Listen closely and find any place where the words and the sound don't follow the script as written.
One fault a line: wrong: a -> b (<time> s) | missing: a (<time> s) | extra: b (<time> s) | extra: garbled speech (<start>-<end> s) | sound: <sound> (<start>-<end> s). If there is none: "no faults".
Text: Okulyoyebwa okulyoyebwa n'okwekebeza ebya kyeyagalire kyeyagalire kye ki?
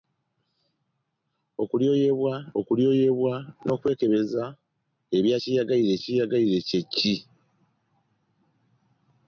no faults